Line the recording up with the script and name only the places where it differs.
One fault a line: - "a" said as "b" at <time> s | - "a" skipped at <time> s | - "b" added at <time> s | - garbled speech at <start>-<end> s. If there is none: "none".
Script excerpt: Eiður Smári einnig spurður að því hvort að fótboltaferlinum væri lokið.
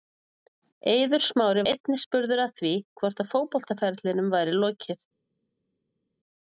none